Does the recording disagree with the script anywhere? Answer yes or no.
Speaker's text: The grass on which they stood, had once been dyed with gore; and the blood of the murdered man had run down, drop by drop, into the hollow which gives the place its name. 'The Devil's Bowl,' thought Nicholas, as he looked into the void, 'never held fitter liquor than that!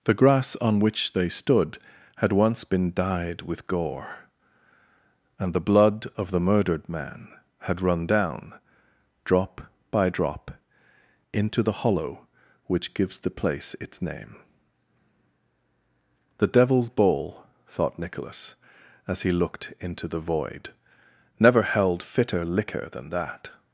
no